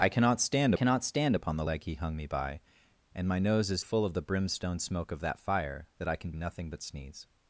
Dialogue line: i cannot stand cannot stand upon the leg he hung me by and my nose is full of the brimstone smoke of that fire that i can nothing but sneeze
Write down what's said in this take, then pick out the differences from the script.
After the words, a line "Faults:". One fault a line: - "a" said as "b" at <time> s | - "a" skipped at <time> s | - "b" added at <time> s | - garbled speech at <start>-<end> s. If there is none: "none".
i cannot stand cannot stand upon the leg he hung me by and my nose is full of the brimstone smoke of that fire that i can nothing but sneeze
Faults:
none